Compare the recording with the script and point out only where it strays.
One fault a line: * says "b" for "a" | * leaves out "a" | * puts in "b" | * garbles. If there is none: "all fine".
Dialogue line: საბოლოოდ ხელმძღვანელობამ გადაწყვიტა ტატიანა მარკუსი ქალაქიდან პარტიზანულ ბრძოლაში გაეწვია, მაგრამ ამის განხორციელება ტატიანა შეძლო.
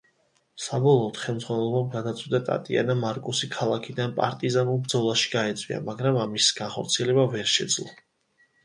* says "ვერ" for "ტატიანა"